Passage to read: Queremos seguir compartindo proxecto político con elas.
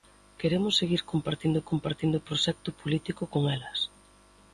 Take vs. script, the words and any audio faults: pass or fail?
fail